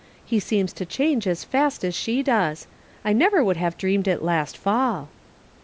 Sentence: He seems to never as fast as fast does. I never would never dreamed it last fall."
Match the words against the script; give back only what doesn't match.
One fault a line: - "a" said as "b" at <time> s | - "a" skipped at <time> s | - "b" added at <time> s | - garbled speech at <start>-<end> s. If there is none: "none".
- "never" said as "change" at 0.9 s
- "fast" said as "she" at 1.9 s
- "never" said as "have" at 3.6 s